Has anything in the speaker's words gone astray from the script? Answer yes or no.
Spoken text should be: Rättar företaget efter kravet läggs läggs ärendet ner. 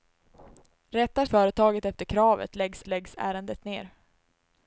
no